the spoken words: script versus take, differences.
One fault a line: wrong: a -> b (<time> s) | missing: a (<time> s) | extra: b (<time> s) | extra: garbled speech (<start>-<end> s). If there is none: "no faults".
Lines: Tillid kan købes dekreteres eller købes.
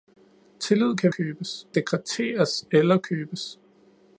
no faults